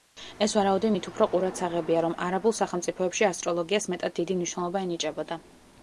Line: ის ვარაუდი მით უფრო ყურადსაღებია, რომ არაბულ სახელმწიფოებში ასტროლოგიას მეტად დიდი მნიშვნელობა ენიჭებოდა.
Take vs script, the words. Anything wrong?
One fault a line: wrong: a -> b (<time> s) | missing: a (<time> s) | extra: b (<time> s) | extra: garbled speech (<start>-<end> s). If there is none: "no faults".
wrong: ის -> ეს (0.4 s)